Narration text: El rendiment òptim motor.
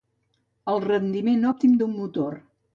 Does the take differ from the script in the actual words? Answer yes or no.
yes